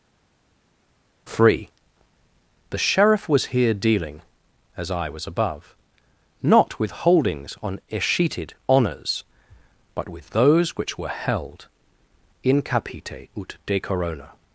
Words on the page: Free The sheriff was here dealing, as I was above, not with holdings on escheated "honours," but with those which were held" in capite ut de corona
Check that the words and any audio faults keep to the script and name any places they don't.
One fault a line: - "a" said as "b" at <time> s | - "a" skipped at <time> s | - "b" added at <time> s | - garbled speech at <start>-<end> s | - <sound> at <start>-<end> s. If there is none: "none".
none